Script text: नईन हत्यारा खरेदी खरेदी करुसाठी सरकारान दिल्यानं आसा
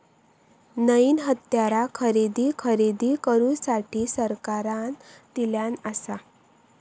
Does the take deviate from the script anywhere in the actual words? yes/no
no